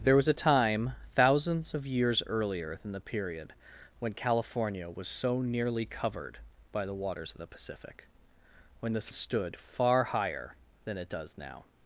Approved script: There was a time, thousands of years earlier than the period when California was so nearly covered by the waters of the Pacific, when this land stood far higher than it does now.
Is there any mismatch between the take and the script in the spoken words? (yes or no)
yes